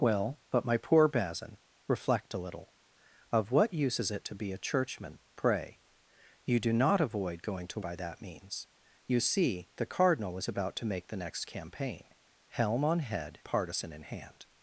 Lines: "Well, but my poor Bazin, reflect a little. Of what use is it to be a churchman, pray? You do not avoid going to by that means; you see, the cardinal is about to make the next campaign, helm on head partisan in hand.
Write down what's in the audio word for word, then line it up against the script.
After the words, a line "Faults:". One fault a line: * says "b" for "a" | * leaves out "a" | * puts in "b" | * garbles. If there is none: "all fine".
"Well, but my poor Bazin, reflect a little. Of what use is it to be a churchman, pray? You do not avoid going to by that means; you see, the cardinal is about to make the next campaign, helm on head partisan in hand.
Faults:
all fine